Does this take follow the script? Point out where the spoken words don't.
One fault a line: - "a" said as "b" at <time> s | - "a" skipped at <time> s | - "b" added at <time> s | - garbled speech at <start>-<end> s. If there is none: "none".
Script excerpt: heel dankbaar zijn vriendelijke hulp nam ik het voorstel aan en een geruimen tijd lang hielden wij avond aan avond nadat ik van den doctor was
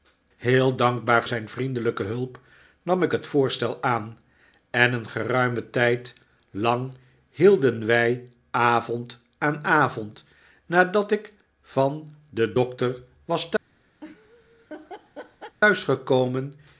none